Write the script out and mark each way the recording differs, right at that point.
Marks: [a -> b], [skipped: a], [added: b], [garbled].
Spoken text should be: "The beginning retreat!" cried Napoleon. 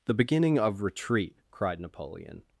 "The beginning [added: of] retreat!" cried Napoleon.